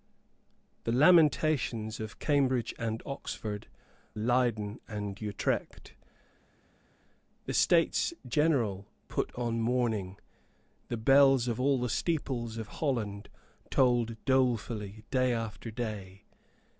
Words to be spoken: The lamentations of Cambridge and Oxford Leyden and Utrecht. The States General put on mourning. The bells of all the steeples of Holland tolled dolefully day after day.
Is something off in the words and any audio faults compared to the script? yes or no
no